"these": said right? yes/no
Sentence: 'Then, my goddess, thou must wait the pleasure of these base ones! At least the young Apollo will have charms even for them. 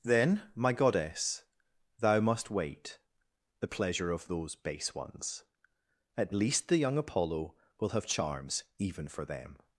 no